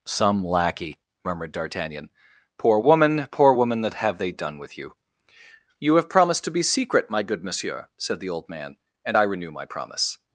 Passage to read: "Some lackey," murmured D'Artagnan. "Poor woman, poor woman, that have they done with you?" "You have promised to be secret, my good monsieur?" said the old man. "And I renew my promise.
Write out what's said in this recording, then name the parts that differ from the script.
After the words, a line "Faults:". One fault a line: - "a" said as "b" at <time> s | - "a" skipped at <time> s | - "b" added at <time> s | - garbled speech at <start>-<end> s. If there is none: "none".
"Some lackey," murmured D'Artagnan. "Poor woman, poor woman, that have they done with you?" "You have promised to be secret, my good monsieur?" said the old man. "And I renew my promise.
Faults:
none